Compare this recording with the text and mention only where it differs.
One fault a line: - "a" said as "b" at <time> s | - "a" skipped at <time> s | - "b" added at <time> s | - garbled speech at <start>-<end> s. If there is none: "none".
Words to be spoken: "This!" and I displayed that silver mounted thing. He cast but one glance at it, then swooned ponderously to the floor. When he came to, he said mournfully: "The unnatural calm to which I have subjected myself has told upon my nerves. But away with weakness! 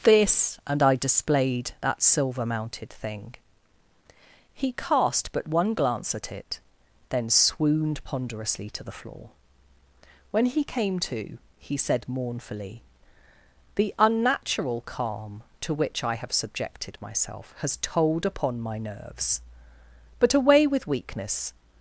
none